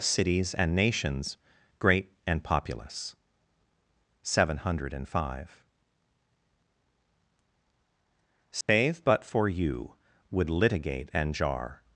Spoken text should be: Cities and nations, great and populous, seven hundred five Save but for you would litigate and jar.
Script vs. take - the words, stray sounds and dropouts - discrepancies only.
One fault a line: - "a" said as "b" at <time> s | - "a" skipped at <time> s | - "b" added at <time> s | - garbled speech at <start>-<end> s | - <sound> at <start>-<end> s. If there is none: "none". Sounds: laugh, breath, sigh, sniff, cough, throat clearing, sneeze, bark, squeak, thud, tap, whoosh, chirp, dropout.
- dropout at 8.6-8.7 s